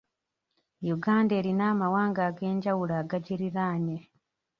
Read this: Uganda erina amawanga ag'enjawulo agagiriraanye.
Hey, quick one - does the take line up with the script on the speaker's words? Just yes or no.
yes